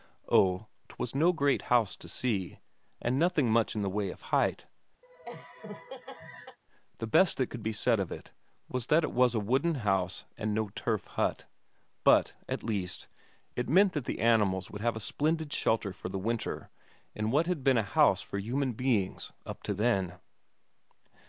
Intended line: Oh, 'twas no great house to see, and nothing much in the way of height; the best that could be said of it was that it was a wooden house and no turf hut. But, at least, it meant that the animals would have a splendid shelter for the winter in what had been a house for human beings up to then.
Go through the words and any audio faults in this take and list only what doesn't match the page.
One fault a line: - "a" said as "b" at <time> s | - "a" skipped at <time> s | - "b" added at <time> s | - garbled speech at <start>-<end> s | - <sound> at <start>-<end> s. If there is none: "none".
- laugh at 5.0-6.6 s